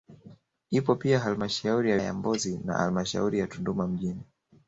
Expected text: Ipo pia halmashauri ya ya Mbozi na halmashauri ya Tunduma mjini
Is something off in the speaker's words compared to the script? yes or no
no